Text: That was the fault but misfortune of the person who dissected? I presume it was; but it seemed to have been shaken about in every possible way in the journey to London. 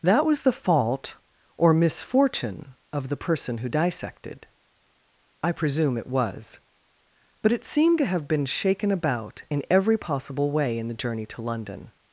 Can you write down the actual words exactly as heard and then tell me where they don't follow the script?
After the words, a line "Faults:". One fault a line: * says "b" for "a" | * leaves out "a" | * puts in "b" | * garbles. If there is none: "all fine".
That was the fault or misfortune of the person who dissected? I presume it was; but it seemed to have been shaken about in every possible way in the journey to London.
Faults:
* says "or" for "but"